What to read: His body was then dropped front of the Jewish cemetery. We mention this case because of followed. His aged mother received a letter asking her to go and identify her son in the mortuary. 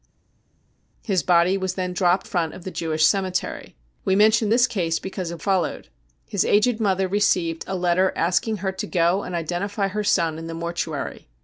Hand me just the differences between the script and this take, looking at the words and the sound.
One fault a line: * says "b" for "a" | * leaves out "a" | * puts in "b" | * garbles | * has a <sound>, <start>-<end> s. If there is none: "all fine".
all fine